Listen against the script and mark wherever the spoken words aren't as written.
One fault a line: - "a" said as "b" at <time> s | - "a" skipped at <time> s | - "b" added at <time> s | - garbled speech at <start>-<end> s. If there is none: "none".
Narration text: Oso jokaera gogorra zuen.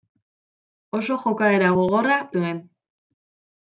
none